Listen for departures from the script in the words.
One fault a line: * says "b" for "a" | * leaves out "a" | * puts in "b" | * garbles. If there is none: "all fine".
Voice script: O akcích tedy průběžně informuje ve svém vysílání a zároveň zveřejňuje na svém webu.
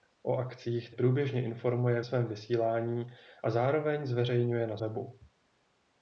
* leaves out "tedy"
* leaves out "ve"
* leaves out "svém"